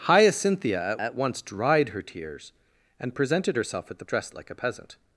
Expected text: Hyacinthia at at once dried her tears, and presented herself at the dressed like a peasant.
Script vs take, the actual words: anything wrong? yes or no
no